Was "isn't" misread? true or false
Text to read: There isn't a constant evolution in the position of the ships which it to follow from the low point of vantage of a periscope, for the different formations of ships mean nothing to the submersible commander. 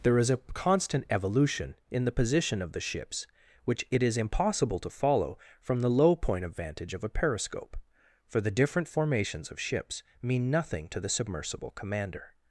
true